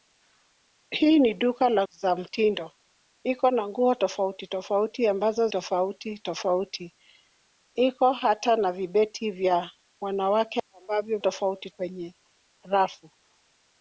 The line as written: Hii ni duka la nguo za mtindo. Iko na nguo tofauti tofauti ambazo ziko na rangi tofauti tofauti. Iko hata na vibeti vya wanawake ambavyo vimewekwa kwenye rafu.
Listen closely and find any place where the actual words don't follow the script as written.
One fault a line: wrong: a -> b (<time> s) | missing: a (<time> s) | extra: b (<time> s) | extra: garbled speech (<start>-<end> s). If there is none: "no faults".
missing: nguo (1.9 s)
missing: ziko na rangi (5.5 s)
wrong: vimewekwa -> tofauti (11.2 s)